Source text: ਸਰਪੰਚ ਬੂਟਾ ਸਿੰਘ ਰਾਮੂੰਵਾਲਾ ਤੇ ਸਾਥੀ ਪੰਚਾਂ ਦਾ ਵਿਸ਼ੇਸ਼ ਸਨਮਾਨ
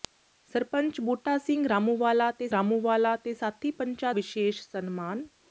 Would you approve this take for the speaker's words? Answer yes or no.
no